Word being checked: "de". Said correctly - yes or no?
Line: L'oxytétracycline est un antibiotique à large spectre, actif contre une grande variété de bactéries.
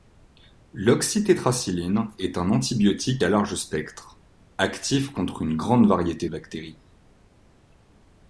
no